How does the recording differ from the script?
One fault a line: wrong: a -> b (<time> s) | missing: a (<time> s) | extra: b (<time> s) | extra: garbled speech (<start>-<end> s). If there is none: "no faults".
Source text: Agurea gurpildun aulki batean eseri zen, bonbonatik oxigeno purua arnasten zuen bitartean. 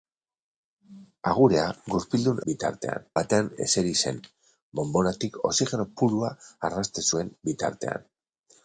wrong: aulki -> bitartean (2.5 s)